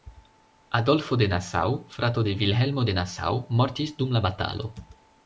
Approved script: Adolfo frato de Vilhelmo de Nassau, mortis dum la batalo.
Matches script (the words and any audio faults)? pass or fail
fail